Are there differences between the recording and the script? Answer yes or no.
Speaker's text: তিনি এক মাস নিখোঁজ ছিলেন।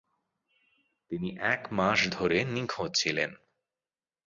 yes